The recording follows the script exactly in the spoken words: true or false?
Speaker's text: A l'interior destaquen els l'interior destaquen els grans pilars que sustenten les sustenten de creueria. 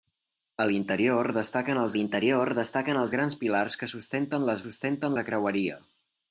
true